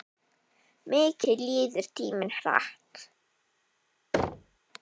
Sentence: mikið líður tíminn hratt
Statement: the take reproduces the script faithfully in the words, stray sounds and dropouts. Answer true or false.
false